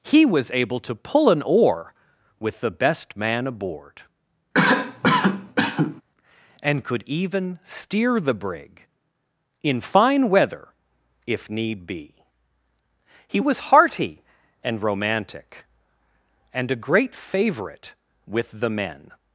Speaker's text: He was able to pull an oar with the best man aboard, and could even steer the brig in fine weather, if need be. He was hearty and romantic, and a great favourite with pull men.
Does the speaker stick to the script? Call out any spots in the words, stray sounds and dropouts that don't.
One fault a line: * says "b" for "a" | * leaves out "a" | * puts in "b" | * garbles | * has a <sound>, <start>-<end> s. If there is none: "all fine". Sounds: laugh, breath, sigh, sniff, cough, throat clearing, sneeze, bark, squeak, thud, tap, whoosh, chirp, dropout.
* has a cough, 4.5-6.0 s
* says "the" for "pull"